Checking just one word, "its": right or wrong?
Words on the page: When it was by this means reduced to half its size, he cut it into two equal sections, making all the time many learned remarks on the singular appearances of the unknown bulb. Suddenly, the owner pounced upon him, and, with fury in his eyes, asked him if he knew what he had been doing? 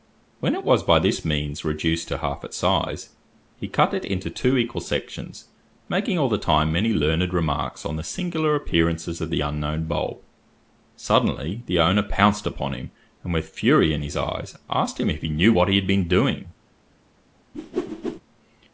right